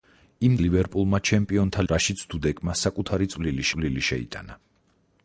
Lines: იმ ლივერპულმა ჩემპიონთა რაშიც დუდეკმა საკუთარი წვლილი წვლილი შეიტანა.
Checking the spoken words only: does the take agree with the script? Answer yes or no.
yes